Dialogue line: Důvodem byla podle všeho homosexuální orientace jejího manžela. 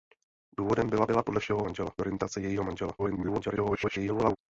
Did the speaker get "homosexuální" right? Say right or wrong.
wrong